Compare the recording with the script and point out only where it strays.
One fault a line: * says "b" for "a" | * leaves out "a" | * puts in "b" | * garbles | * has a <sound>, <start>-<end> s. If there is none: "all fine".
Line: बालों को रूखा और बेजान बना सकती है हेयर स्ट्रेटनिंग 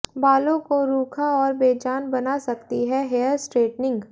all fine